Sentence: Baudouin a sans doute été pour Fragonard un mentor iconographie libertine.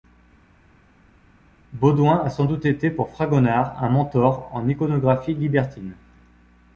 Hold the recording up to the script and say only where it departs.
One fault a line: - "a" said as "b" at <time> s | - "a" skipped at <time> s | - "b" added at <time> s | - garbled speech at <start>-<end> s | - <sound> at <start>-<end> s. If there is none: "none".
- "en" added at 4.5 s